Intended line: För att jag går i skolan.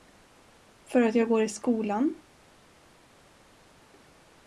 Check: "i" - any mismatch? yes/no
no